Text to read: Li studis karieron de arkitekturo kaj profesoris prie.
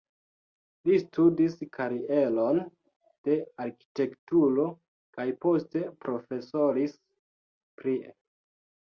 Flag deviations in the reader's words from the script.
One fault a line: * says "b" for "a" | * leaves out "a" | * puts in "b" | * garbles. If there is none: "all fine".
* puts in "poste"